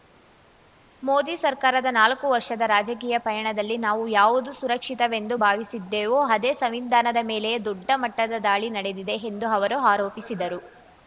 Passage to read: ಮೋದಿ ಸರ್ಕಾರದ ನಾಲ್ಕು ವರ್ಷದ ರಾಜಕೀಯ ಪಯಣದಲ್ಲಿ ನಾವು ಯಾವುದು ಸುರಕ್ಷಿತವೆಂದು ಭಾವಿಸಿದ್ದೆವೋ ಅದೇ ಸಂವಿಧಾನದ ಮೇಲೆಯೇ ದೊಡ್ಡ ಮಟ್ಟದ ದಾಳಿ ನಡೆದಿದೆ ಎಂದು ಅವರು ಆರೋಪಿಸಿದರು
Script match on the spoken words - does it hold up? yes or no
yes